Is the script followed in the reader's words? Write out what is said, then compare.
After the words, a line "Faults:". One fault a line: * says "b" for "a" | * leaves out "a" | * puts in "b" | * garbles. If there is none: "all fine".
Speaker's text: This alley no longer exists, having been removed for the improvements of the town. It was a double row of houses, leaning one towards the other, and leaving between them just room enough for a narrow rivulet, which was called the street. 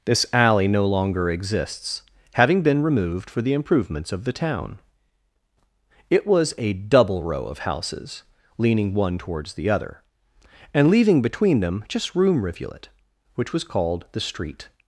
This alley no longer exists, having been removed for the improvements of the town. It was a double row of houses, leaning one towards the other, and leaving between them just room rivulet, which was called the street.
Faults:
* leaves out "enough for a narrow"